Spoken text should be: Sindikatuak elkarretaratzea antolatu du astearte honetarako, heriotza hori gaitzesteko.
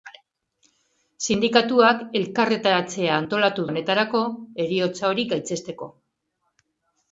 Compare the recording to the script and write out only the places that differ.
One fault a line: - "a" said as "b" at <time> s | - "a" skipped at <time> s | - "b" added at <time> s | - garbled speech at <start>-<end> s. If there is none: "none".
- "du astearte" skipped at 3.7 s